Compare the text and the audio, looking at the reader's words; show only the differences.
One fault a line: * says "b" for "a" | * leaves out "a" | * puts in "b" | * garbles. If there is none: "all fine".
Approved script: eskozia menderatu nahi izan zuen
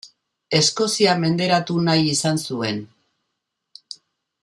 all fine